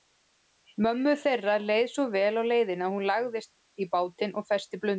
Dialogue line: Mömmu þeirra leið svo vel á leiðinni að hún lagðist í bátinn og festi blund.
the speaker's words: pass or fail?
pass